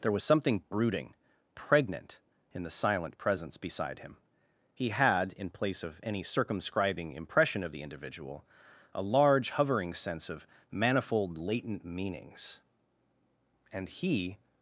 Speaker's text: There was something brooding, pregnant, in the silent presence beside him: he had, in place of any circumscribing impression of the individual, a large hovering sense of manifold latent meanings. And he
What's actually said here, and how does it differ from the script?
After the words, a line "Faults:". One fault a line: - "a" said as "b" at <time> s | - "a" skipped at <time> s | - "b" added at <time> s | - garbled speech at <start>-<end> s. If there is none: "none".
There was something brooding, pregnant, in the silent presence beside him: he had, in place of any circumscribing impression of the individual, a large hovering sense of manifold latent meanings. And he
Faults:
none